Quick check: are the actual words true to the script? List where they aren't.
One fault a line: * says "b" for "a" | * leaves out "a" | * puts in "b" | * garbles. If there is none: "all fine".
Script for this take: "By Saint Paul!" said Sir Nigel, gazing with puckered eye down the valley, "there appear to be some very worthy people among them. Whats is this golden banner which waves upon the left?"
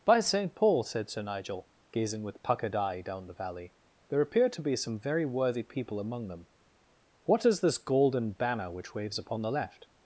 * says "What" for "Whats"